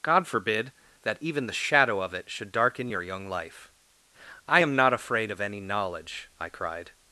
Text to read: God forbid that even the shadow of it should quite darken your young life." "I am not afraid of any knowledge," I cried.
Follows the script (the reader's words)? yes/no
no